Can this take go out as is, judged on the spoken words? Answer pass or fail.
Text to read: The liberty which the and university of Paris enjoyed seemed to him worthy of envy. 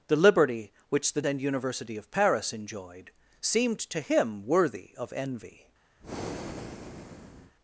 pass